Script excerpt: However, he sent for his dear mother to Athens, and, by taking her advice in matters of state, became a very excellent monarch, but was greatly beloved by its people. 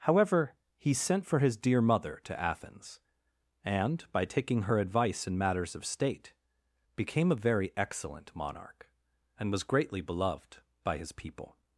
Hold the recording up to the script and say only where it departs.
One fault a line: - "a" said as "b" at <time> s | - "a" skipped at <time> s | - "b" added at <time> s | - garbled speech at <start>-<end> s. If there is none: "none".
- "but" said as "and" at 9.4 s
- "its" said as "his" at 11.0 s